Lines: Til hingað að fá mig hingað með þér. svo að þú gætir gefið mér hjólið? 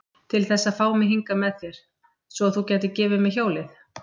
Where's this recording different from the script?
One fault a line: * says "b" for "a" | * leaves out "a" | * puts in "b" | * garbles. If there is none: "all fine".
* says "þess" for "hingað"